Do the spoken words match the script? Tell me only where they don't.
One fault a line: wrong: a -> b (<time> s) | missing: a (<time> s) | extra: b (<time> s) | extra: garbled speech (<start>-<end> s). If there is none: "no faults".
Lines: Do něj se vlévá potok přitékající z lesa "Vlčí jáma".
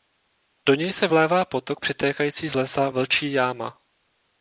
no faults